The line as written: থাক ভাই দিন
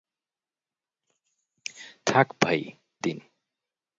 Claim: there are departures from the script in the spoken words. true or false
false